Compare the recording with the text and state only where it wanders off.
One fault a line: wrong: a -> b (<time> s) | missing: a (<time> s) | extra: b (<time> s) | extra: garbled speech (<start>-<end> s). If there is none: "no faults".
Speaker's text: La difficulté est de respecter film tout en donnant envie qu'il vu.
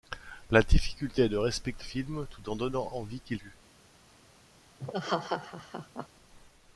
no faults